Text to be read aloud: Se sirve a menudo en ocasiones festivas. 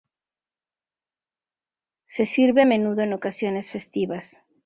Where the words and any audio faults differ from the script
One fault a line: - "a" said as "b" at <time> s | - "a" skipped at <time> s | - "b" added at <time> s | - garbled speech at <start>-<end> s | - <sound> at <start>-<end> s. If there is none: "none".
none